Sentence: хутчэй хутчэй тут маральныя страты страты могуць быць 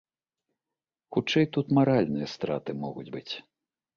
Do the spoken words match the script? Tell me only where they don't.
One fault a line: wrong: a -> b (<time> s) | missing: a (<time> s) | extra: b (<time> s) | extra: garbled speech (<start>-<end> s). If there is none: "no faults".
missing: хутчэй (1.4 s)
missing: страты (2.7 s)